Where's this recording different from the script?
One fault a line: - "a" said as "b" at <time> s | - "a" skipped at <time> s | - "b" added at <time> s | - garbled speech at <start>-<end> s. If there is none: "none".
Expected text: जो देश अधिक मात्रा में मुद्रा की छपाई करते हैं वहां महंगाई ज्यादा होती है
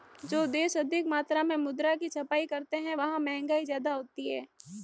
none